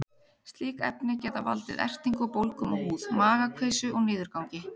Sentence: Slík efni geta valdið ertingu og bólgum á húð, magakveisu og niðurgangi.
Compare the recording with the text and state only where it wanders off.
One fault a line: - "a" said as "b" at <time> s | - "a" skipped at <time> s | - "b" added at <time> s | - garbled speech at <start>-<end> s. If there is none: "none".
none